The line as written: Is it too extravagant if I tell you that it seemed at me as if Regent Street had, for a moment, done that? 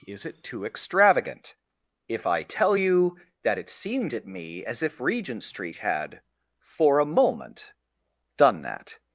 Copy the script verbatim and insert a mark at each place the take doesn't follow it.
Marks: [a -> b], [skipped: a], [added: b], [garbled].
Is it too extravagant if I tell you that it seemed at me as if Regent Street had, for a moment, done that?